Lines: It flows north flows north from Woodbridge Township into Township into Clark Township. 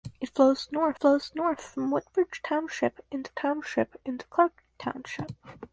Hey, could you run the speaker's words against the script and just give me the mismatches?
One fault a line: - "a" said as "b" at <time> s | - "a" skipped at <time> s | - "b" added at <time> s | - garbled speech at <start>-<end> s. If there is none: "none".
none